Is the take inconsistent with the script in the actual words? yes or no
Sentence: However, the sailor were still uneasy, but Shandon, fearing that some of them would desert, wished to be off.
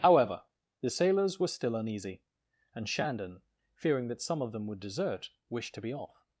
yes